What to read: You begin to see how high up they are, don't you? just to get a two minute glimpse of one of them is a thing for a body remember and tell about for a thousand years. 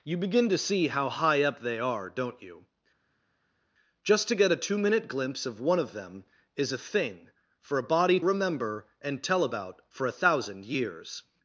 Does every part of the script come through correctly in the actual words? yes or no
yes